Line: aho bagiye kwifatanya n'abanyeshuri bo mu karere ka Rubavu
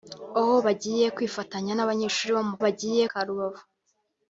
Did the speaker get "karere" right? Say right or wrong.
wrong